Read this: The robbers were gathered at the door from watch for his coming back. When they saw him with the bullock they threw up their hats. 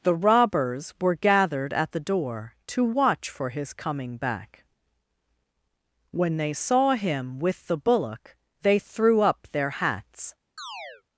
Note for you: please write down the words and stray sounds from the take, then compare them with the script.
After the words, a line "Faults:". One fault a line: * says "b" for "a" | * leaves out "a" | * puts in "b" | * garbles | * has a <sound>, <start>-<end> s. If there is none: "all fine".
The robbers were gathered at the door to watch for his coming back. When they saw him with the bullock they threw up their hats.
Faults:
* says "to" for "from"
* has a chirp, 10.6-11.0 s